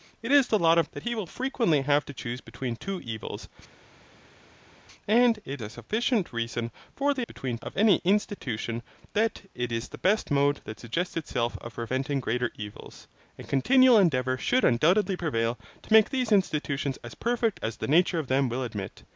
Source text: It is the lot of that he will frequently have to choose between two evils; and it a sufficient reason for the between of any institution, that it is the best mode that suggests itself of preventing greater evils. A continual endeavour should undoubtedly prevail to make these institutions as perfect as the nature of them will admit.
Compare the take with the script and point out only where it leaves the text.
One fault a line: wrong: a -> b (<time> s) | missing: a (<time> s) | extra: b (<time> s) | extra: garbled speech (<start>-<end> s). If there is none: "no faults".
no faults